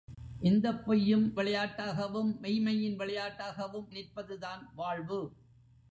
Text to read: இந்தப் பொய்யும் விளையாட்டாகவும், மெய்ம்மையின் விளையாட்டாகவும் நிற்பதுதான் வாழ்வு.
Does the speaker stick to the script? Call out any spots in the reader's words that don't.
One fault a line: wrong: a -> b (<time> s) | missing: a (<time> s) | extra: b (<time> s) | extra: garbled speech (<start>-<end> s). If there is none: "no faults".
no faults